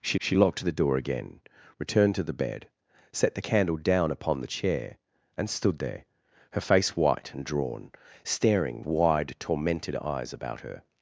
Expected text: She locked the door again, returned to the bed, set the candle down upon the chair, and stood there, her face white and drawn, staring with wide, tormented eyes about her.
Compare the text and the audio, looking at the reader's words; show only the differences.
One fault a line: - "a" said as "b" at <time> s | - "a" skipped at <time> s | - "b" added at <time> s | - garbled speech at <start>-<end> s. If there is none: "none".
- "she" added at 0.2 s
- "with" skipped at 8.8 s